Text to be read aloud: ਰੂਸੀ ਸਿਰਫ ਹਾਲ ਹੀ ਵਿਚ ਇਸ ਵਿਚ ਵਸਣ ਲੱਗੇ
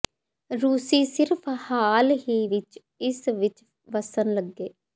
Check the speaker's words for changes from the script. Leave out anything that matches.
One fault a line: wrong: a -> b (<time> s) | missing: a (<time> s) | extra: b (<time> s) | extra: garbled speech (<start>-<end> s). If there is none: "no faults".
no faults